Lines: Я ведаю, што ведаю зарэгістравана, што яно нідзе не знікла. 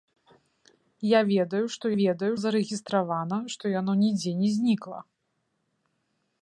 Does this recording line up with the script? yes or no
yes